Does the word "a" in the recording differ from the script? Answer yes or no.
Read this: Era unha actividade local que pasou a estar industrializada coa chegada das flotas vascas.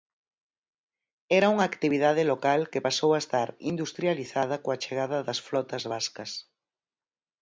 no